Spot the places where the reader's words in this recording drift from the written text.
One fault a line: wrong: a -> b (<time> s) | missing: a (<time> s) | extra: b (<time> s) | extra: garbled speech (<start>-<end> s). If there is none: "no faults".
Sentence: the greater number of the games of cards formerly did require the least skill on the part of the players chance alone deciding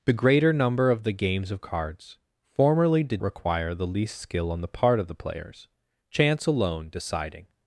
no faults